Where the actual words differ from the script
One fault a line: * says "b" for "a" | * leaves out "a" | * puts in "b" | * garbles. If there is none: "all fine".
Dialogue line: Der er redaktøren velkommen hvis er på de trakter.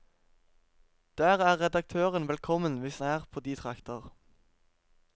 all fine